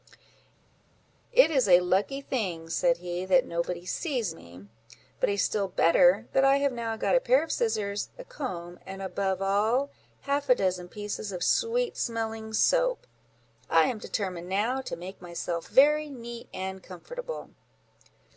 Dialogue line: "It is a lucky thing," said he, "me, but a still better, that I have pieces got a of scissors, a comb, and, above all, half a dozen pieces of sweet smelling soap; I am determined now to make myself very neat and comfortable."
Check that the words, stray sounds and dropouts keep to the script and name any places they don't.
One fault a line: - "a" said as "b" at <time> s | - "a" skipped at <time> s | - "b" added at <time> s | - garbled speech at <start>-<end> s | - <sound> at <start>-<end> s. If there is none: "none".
- "that nobody sees" added at 3.2 s
- "pieces" said as "now" at 6.7 s
- "pair" added at 7.2 s